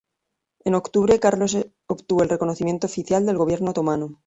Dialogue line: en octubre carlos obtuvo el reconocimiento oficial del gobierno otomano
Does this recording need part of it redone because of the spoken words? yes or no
no